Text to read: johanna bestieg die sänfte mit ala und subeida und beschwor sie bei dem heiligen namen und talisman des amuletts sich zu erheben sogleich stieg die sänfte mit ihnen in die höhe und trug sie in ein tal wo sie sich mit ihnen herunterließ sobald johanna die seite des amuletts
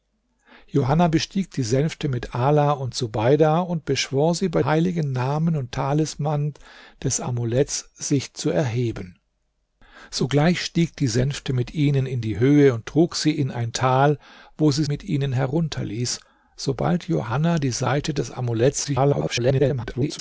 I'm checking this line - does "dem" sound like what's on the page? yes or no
no